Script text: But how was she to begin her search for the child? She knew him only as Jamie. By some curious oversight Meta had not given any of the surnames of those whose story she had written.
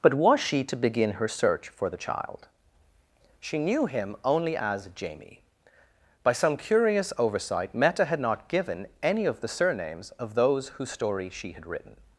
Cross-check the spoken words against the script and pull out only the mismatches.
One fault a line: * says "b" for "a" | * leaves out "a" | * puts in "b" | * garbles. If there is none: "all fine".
* leaves out "how"